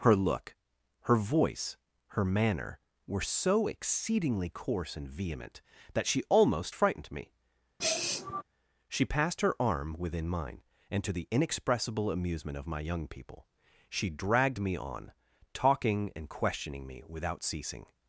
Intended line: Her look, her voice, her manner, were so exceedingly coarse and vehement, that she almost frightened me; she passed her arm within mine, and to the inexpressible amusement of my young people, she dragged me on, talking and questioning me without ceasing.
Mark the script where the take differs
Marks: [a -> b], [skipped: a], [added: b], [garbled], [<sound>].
Her look, her voice, her manner, were so exceedingly coarse and vehement, that she almost frightened me; [sniff] she passed her arm within mine, and to the inexpressible amusement of my young people, she dragged me on, talking and questioning me without ceasing.